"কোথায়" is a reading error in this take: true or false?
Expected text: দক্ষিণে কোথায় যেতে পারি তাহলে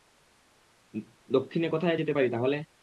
false